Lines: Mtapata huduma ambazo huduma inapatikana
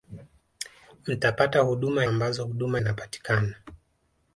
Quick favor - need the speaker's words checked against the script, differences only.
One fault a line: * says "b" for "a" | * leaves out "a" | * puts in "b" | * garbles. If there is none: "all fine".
all fine